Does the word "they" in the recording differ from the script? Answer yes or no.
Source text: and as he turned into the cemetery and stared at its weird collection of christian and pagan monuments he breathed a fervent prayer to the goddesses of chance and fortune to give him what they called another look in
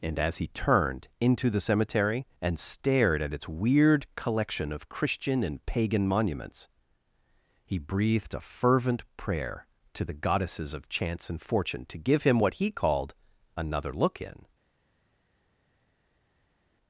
yes